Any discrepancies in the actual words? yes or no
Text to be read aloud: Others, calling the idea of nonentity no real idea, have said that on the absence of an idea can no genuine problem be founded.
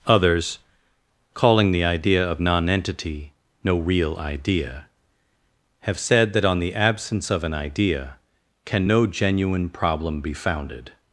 no